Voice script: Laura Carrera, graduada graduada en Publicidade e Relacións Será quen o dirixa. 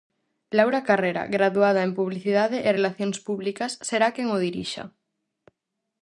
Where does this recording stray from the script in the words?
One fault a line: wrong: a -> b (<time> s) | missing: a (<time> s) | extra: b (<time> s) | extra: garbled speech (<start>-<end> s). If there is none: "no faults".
missing: graduada (1.8 s)
extra: Públicas (3.3 s)